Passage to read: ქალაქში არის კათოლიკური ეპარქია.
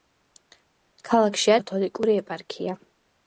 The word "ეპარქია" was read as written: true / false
true